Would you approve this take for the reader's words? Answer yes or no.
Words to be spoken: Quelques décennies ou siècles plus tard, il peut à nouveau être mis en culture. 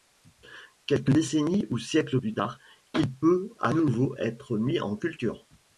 yes